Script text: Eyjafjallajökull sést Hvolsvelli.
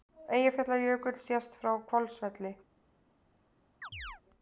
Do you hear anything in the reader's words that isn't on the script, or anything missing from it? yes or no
yes